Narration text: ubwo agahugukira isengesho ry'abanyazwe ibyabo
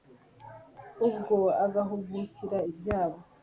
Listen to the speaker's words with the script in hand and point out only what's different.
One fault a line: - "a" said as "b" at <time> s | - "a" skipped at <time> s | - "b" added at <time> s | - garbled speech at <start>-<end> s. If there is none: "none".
- "isengesho ry'abanyazwe" skipped at 2.6 s